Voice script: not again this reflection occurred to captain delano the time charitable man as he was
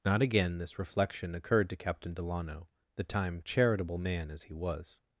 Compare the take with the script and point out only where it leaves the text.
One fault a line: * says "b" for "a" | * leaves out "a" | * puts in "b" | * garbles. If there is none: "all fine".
all fine